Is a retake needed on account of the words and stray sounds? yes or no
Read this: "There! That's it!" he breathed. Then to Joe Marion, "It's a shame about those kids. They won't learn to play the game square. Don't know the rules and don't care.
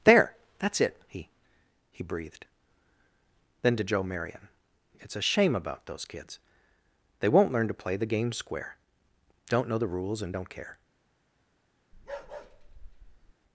yes